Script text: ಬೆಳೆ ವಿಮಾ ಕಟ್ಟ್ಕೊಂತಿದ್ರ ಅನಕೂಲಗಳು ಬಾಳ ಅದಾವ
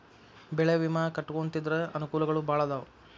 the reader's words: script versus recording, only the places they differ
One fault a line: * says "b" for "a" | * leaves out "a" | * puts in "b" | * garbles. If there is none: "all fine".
all fine